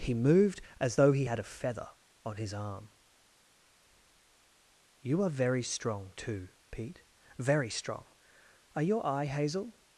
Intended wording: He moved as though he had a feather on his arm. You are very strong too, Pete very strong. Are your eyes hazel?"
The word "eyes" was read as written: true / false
false